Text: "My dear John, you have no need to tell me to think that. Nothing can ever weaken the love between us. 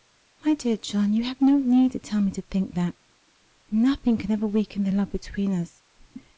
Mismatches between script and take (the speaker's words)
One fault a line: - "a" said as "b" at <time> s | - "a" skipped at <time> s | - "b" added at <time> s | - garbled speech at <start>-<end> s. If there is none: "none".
none